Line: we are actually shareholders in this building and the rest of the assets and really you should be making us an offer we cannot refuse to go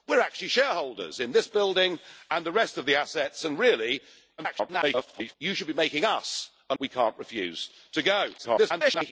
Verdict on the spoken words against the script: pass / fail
fail